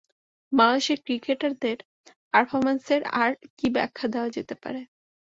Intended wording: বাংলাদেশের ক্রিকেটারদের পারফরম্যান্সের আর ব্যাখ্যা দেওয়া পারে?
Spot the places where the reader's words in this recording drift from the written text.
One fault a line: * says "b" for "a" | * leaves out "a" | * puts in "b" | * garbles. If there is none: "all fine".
* puts in "কী"
* puts in "যেতে"